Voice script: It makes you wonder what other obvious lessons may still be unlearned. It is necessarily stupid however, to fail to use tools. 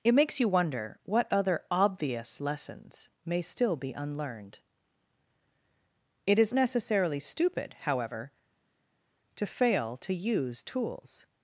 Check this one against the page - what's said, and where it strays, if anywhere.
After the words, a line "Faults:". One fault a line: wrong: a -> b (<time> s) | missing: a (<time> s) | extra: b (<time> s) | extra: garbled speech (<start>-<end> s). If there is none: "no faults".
It makes you wonder what other obvious lessons may still be unlearned. It is necessarily stupid however, to fail to use tools.
Faults:
no faults